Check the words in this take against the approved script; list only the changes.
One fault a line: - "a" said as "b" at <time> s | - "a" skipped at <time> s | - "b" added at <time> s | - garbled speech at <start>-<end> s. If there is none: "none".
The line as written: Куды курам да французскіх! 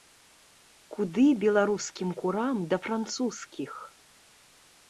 - "беларускім" added at 1.4 s